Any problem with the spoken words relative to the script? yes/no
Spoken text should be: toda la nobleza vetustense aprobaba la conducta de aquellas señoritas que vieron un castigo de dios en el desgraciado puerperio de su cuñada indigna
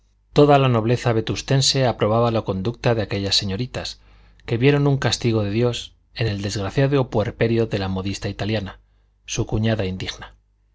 yes